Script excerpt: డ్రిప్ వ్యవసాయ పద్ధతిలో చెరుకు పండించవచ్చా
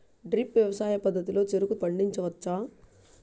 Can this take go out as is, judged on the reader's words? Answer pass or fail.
pass